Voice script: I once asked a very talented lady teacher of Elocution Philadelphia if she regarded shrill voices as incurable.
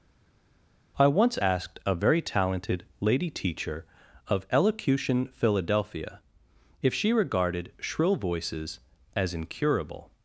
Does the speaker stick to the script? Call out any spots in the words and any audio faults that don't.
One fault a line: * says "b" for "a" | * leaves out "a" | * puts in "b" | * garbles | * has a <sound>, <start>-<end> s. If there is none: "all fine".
all fine